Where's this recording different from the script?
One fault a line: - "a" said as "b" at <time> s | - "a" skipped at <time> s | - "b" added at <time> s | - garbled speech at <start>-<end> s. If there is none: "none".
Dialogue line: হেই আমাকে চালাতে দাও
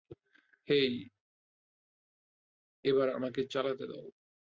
- "এবার" added at 2.9 s